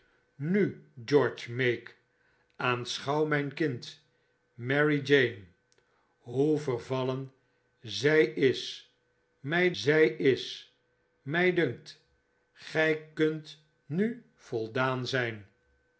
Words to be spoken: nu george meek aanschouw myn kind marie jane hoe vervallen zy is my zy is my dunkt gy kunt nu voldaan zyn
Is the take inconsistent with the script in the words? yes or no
no